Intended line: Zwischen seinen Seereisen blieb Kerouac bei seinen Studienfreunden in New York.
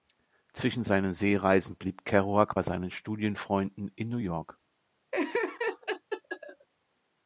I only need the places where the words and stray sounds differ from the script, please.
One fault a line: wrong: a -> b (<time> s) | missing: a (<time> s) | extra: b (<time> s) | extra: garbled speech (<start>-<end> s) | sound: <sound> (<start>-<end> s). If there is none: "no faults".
sound: laugh (5.1-6.7 s)